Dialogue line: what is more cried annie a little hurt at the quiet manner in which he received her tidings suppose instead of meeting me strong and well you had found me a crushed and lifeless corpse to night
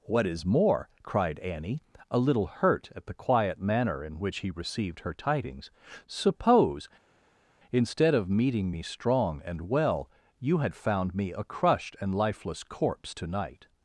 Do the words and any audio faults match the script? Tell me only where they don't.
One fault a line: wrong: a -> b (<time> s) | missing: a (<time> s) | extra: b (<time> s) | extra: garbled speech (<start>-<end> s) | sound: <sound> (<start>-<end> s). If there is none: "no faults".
no faults